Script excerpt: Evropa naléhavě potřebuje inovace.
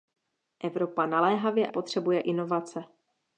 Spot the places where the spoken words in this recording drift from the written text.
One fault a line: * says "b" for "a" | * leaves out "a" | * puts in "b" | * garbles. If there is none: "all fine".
all fine